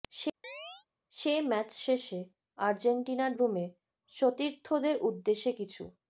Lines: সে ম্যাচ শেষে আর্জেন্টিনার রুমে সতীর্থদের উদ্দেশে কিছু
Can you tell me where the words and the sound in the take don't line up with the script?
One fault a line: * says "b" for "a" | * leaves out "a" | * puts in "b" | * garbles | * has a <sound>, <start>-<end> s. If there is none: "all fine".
* has a chirp, 0.4-0.9 s